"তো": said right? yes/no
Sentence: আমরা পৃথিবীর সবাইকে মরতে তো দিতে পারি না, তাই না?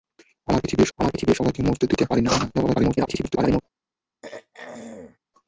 no